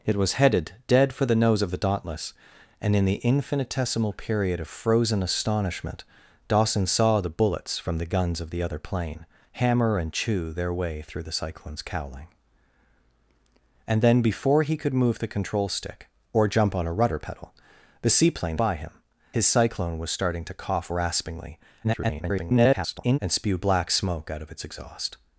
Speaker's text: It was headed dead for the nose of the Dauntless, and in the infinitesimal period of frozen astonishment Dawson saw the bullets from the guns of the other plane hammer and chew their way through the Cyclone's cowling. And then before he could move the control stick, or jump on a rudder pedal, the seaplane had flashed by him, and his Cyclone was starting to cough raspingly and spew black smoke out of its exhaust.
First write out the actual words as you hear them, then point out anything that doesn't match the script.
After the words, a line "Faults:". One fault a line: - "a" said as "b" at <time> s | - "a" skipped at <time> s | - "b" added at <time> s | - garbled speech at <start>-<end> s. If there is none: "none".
It was headed dead for the nose of the Dauntless, and in the infinitesimal period of frozen astonishment Dawson saw the bullets from the guns of the other plane hammer and chew their way through the Cyclone's cowling. And then before he could move the control stick, or jump on a rudder pedal, the seaplane by him, his Cyclone was starting to cough raspingly [garbled] and spew black smoke out of its exhaust.
Faults:
- "had flashed" skipped at 18.6 s
- "and" skipped at 18.9 s
- garbled speech at 21.8-23.2 s